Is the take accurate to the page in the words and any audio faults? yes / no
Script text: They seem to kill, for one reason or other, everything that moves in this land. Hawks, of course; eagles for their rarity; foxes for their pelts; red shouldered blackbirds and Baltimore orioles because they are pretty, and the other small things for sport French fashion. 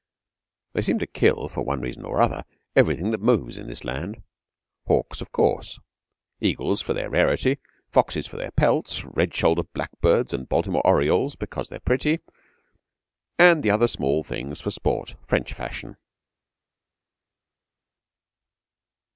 yes